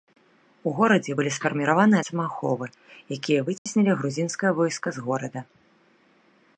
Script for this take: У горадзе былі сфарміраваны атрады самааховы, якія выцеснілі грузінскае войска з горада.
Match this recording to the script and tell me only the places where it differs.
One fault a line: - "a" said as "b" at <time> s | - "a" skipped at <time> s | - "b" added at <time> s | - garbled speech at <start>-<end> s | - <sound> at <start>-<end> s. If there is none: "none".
- "атрады" skipped at 2.0 s
- dropout at 3.6-3.7 s